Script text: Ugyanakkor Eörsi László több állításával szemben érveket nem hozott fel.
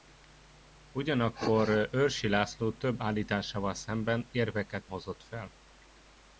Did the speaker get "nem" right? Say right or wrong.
wrong